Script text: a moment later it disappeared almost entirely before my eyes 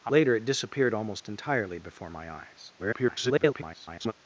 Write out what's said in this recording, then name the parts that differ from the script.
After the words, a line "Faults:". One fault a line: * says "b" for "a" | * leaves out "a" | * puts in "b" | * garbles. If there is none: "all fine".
a later it disappeared almost entirely before my eyes [garbled]
Faults:
* leaves out "moment"
* garbles